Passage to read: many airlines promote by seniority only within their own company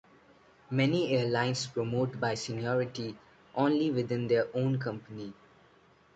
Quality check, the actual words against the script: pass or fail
pass